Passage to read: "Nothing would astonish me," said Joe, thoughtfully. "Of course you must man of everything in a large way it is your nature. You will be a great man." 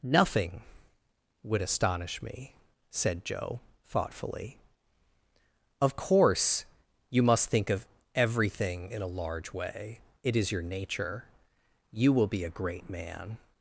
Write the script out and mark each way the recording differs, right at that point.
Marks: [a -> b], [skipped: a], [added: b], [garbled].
"Nothing would astonish me," said Joe, thoughtfully. "Of course you must [man -> think] of everything in a large way it is your nature. You will be a great man."